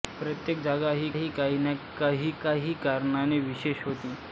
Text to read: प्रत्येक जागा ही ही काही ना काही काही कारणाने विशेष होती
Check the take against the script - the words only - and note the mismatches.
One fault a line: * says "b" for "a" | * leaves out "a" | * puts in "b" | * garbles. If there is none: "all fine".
all fine